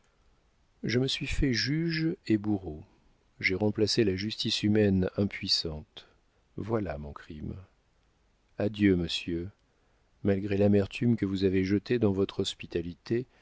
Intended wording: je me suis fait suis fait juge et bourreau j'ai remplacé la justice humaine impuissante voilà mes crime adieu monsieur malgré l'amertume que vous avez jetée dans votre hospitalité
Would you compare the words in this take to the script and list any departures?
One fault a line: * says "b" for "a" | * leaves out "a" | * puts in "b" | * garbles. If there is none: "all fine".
* leaves out "suis fait"
* says "mon" for "mes"